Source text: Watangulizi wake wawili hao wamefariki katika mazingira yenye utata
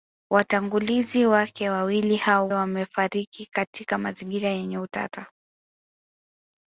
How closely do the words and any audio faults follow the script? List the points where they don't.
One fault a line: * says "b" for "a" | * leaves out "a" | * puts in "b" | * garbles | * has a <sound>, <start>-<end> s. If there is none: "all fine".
all fine